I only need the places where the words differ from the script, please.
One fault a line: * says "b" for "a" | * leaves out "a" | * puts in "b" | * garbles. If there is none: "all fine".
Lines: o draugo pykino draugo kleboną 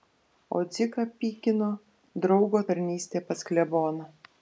* says "dziką" for "draugo"
* puts in "tarnystė pas"